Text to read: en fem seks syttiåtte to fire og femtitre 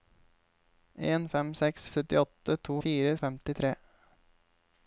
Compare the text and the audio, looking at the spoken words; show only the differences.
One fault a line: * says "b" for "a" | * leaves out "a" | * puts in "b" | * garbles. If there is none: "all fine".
all fine